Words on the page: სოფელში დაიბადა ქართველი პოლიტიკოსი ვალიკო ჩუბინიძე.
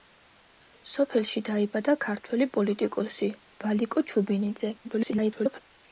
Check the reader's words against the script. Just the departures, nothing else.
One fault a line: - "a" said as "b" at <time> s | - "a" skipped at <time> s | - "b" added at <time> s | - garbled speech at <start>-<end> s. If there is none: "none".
- garbled speech at 4.8-5.6 s